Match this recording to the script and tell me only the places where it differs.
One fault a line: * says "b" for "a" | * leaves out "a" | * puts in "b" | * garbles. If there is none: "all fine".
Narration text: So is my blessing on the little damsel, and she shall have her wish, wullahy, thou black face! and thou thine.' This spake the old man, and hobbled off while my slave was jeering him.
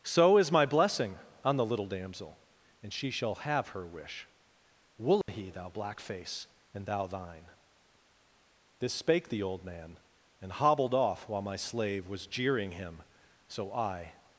* puts in "So I"